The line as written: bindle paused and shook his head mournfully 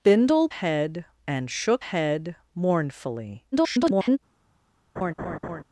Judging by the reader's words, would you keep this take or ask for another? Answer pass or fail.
fail